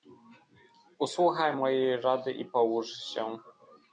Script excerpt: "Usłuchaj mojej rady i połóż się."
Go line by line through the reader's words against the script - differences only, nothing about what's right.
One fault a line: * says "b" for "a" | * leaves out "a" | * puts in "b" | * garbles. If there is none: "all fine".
all fine